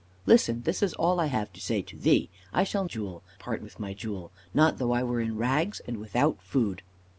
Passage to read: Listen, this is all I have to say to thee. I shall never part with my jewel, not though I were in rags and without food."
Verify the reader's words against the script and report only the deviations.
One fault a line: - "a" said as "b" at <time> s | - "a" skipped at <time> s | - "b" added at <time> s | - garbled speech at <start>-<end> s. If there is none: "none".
- "never" said as "jewel" at 2.8 s